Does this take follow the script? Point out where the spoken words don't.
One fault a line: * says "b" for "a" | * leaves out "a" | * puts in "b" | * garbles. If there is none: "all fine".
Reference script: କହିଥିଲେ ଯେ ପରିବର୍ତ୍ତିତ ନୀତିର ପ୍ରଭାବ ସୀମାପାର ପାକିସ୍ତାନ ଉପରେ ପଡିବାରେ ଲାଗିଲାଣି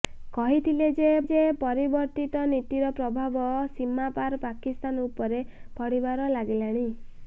* puts in "ଯେ"